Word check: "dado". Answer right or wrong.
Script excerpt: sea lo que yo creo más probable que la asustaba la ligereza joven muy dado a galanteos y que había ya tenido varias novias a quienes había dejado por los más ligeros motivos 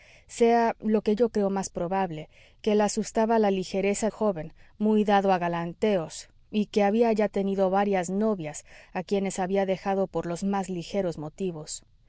right